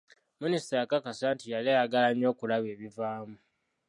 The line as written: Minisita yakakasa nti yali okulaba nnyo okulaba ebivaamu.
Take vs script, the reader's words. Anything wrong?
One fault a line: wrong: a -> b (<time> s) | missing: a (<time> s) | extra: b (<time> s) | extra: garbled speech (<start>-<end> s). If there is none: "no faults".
wrong: okulaba -> ayagala (1.7 s)